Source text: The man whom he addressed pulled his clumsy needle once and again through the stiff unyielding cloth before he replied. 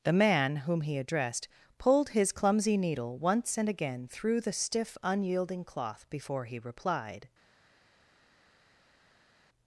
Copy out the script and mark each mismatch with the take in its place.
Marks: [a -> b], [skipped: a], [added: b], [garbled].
The man whom he addressed pulled his clumsy needle once and again through the stiff unyielding cloth before he replied.